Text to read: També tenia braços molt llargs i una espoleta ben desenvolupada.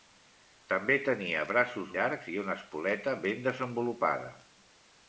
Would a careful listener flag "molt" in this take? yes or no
yes